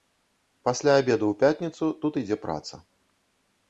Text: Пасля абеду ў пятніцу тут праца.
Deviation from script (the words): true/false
true